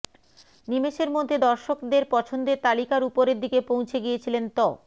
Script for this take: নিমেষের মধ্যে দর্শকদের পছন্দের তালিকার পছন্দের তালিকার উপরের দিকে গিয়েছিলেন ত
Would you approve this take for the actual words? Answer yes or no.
no